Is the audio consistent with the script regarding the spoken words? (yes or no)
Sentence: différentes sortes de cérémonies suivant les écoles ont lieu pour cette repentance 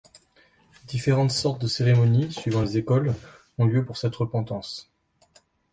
yes